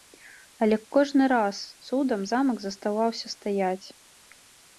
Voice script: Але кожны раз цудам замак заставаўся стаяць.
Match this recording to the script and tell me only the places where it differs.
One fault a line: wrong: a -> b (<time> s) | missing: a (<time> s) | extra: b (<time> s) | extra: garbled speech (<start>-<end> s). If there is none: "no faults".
no faults